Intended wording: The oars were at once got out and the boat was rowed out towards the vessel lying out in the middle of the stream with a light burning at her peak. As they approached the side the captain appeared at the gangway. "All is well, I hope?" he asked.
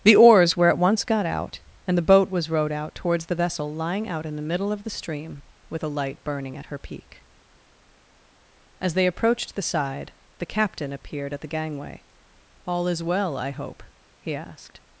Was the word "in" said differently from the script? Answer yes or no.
no